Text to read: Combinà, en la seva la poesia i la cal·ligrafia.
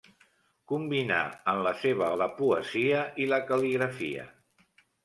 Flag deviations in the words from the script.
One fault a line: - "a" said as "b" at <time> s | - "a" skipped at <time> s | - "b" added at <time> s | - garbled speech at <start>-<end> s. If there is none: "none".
none